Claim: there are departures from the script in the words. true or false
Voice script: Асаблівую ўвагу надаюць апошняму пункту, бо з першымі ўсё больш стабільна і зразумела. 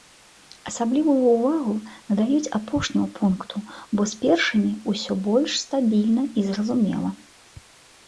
false